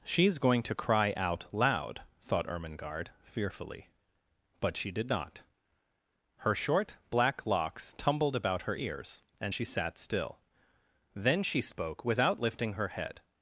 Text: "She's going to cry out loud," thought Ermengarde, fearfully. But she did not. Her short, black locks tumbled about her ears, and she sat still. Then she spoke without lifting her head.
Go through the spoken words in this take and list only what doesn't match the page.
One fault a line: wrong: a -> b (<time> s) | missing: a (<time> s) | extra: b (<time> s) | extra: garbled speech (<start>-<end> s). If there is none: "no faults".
no faults